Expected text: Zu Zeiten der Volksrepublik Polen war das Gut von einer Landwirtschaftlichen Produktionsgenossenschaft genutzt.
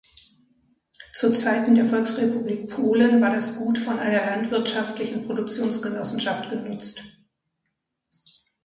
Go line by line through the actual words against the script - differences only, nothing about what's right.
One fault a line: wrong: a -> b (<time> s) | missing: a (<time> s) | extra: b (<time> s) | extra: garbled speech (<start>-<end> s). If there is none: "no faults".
no faults